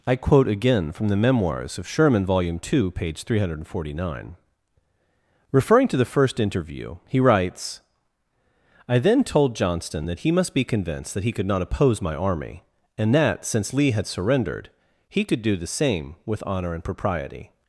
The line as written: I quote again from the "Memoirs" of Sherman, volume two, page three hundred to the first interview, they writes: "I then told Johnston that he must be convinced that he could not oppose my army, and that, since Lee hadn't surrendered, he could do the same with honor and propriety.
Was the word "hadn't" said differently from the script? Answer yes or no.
yes